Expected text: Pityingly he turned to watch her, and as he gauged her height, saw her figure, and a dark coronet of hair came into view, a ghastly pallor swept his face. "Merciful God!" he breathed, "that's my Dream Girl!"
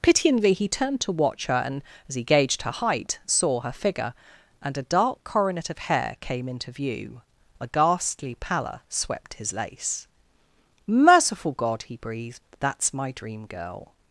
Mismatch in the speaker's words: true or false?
true